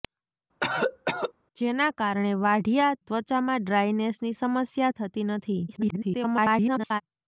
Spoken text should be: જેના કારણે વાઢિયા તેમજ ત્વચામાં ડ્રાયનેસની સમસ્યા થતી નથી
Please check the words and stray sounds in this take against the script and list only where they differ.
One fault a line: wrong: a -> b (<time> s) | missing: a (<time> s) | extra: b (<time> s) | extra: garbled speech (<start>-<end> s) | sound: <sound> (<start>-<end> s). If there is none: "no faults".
sound: cough (0.6-1.3 s)
missing: તેમજ (3.0 s)
extra: garbled speech (5.7-7.0 s)